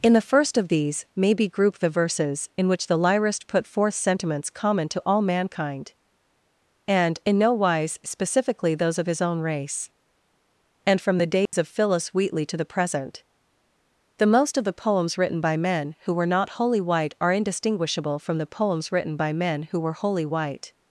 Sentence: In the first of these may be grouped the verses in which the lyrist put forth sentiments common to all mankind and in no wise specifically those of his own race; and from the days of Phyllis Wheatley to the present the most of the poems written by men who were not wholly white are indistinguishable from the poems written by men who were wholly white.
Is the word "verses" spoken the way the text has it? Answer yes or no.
yes